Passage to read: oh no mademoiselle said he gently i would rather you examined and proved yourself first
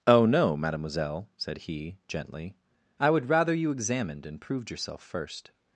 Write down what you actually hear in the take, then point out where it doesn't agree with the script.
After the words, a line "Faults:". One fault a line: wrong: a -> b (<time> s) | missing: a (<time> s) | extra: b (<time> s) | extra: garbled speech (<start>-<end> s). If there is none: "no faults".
oh no mademoiselle said he gently i would rather you examined and proved yourself first
Faults:
no faults